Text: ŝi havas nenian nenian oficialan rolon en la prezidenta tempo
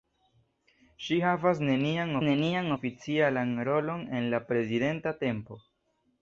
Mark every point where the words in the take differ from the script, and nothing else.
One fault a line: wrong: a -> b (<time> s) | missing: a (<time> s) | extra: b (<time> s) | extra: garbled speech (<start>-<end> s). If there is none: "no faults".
no faults